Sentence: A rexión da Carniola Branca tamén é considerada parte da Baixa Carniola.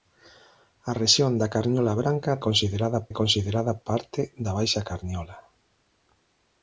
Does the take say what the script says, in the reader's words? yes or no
no